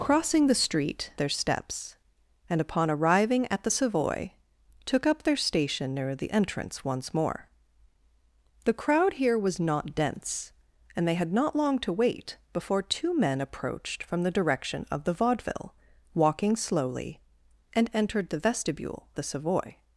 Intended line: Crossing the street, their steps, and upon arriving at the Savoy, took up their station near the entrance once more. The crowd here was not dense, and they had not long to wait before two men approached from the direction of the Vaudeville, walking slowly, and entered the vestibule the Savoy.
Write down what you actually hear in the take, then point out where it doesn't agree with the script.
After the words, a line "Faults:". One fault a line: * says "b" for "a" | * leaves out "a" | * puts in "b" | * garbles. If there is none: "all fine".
Crossing the street, their steps, and upon arriving at the Savoy, took up their station near the entrance once more. The crowd here was not dense, and they had not long to wait before two men approached from the direction of the Vaudeville, walking slowly, and entered the vestibule the Savoy.
Faults:
all fine